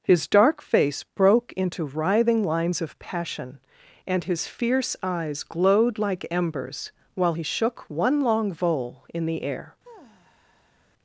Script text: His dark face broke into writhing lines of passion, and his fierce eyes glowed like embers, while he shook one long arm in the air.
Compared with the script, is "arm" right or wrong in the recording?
wrong